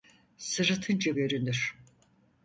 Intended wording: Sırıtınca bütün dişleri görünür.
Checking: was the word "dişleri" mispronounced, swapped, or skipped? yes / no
yes